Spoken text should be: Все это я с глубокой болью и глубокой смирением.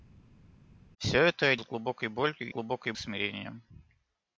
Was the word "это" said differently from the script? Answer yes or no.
no